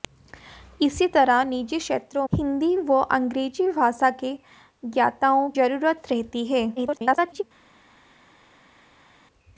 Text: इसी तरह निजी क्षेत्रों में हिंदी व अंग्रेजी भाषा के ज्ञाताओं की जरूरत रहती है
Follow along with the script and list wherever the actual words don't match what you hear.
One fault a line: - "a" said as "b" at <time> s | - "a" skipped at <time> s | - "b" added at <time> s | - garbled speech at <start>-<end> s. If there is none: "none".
- "में" skipped at 2.2 s
- "की" skipped at 5.5 s
- garbled speech at 6.8-7.4 s